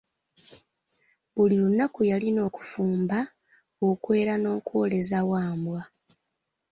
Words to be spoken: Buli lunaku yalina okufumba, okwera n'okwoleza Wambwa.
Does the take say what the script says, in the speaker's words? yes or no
yes